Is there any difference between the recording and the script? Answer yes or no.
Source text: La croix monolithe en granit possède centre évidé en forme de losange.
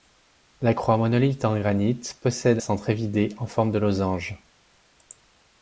no